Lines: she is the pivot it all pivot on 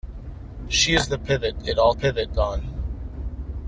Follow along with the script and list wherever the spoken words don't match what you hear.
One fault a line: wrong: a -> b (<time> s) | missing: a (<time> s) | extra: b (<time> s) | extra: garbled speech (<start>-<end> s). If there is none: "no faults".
no faults